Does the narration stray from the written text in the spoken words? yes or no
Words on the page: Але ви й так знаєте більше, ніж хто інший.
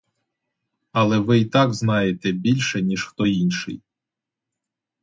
no